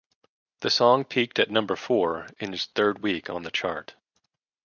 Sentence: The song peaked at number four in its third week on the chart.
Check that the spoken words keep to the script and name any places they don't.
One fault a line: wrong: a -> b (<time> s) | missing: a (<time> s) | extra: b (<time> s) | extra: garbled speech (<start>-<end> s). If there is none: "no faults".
no faults